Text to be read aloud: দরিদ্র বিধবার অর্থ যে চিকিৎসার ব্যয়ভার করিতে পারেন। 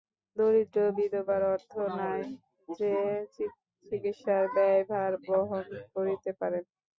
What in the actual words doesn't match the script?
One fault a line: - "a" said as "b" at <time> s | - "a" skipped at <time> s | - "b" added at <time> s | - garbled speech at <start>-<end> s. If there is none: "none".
- "নাই" added at 2.0 s
- "বহন" added at 5.2 s